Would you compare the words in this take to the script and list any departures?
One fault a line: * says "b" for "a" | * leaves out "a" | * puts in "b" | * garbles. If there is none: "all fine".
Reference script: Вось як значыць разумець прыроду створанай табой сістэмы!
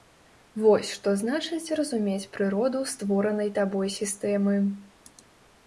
* says "што" for "як"